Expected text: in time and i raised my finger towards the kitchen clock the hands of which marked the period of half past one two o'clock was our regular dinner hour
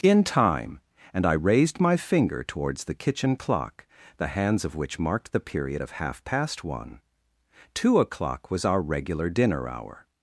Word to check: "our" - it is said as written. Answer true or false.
true